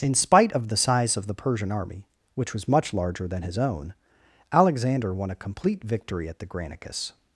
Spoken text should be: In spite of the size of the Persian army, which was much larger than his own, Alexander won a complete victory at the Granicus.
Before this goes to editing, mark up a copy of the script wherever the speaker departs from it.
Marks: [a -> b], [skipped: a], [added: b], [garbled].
In spite of the size of the Persian army, which was much larger than his own, Alexander won a complete victory at the Granicus.